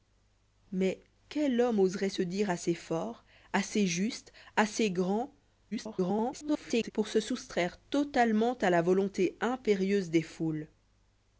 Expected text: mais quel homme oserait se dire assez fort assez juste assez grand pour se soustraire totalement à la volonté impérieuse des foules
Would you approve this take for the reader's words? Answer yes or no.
no